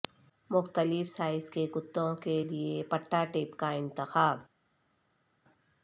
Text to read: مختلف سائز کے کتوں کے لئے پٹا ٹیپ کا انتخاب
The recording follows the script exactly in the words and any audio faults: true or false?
true